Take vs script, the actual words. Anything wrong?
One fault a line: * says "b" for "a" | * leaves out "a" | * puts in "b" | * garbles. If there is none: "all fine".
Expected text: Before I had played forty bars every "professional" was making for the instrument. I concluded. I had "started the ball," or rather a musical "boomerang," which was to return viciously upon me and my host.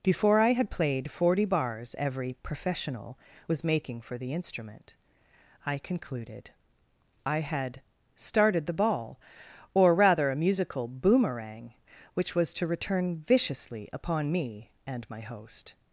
all fine